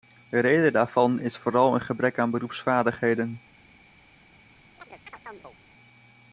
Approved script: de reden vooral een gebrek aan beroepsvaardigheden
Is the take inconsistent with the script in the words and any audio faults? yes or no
yes